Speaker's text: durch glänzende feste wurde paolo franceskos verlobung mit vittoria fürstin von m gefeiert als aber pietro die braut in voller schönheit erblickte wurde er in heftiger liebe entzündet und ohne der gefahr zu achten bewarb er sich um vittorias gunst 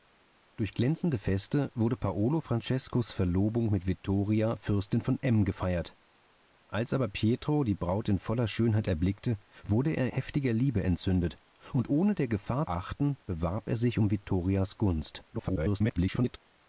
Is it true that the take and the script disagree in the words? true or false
true